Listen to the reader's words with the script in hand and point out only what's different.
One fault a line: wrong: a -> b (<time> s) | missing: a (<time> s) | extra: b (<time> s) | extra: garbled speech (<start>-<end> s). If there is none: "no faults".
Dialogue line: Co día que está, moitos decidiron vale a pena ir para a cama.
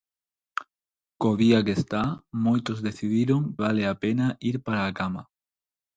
no faults